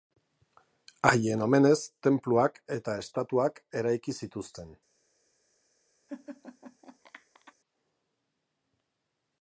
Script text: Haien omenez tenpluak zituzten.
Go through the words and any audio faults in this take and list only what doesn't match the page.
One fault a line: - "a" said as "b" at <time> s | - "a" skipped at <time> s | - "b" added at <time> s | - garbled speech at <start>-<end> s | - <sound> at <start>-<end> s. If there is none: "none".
- "eta estatuak eraiki" added at 2.8 s
- laugh at 6.1-7.5 s